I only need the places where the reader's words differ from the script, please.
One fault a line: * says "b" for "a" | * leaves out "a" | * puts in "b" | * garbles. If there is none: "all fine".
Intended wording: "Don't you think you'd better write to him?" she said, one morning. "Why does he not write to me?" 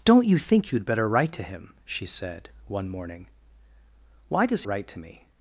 * leaves out "he not"